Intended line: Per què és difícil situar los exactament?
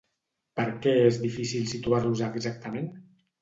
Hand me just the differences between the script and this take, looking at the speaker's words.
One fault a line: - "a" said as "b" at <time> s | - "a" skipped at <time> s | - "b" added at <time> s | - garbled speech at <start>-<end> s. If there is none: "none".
none